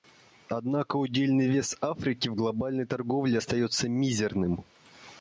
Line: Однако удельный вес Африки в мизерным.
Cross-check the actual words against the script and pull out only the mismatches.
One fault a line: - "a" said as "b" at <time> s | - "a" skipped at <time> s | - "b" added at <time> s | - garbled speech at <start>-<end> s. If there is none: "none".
- "глобальной торговле остается" added at 2.3 s